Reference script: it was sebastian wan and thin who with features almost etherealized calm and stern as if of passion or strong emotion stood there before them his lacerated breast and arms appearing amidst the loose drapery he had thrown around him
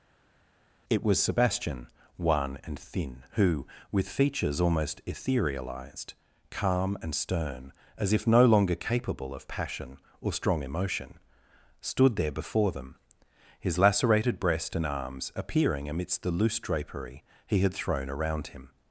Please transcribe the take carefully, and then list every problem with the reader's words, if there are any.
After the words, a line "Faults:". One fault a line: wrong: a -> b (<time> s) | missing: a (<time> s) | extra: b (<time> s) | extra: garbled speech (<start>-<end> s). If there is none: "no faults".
it was sebastian wan and thin who with features almost etherealized calm and stern as if no longer capable of passion or strong emotion stood there before them his lacerated breast and arms appearing amidst the loose drapery he had thrown around him
Faults:
extra: no longer capable (8.2 s)